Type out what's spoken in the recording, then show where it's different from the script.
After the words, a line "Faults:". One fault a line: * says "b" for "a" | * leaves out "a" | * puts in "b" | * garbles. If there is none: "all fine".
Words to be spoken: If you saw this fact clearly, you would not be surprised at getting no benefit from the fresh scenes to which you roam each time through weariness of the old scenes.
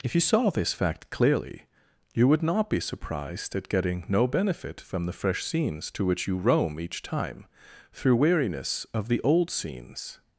If you saw this fact clearly, you would not be surprised at getting no benefit from the fresh scenes to which you roam each time through weariness of the old scenes.
Faults:
all fine